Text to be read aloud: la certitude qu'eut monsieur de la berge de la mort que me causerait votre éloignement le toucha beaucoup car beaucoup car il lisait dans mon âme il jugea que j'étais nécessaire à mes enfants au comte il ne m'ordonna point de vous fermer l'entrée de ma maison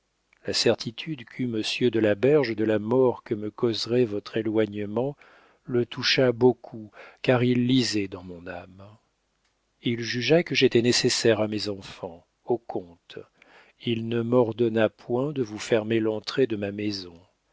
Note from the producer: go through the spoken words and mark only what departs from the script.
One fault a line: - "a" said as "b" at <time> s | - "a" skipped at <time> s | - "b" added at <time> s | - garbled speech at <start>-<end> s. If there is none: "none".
- "beaucoup car" skipped at 7.4 s